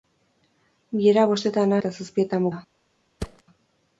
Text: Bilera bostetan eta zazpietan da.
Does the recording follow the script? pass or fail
pass